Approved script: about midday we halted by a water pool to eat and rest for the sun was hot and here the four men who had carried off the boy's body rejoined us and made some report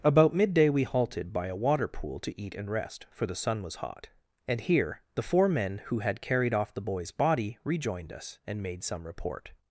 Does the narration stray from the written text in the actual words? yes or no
no